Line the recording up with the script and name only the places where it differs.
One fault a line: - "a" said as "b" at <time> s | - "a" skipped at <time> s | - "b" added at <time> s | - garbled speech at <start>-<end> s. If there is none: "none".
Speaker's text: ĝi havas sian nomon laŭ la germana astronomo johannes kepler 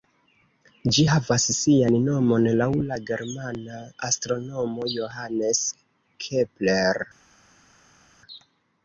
none